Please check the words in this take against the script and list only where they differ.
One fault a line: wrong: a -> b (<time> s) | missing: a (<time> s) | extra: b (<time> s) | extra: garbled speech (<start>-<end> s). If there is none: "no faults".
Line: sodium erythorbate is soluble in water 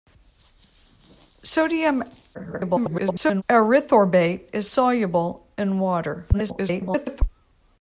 extra: garbled speech (2.3-3.4 s)
extra: garbled speech (6.3-7.2 s)